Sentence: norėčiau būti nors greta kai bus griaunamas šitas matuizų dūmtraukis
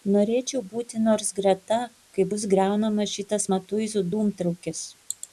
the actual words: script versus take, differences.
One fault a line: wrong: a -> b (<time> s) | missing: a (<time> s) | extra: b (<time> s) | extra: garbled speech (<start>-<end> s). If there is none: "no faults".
no faults